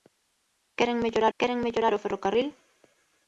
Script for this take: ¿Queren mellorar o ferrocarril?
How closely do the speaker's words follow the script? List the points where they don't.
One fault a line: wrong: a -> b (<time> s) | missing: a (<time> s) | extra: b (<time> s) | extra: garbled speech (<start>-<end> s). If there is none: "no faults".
extra: queren mellorar (1.4 s)